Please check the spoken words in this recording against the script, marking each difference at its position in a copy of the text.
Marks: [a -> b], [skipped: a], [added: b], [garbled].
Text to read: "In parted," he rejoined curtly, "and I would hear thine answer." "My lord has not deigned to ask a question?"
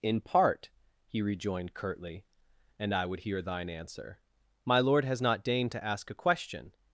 "In [parted," -> part] he rejoined curtly, "and I would hear thine answer." "My lord has not deigned to ask a question?"